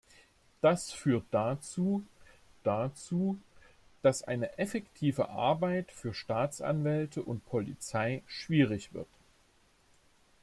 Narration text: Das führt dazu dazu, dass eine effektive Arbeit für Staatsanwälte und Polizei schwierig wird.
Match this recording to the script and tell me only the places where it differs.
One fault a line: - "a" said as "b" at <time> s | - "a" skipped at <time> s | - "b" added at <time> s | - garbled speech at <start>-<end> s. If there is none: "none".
none